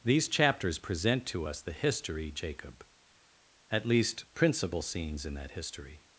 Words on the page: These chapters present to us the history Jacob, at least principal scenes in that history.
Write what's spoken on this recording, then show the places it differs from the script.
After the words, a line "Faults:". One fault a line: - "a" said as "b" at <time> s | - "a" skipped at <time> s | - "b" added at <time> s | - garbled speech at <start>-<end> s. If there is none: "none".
These chapters present to us the history Jacob, at least principal scenes in that history.
Faults:
none